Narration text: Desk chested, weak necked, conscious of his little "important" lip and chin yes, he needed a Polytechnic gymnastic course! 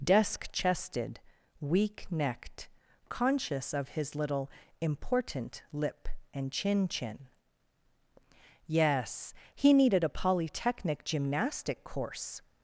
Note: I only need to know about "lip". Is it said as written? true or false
true